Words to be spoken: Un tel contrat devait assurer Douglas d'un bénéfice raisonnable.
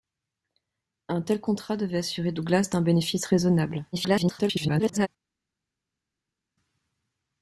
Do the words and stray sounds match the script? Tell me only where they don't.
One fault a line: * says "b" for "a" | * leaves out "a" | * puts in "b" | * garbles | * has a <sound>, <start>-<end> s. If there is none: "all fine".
* garbles